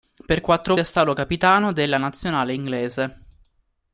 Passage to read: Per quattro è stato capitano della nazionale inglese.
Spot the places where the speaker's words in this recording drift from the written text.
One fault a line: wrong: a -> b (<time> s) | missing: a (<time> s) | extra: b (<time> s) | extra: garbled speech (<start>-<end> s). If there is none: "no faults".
no faults